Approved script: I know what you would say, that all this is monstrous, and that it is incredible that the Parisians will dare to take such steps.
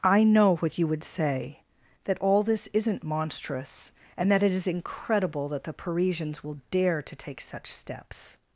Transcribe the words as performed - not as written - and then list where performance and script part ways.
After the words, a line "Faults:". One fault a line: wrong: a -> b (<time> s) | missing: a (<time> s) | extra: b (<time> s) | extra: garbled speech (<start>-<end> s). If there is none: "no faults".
I know what you would say, that all this isn't monstrous, and that it is incredible that the Parisians will dare to take such steps.
Faults:
wrong: is -> isn't (2.7 s)